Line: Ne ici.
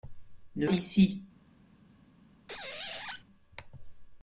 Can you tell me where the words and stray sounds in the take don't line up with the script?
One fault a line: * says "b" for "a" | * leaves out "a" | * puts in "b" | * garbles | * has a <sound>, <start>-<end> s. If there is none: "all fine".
* has a squeak, 2.5-3.2 s